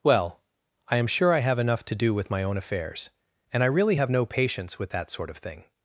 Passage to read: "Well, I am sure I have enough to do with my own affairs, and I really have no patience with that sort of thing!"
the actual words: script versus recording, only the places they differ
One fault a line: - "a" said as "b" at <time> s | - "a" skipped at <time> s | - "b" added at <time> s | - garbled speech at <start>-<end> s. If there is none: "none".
none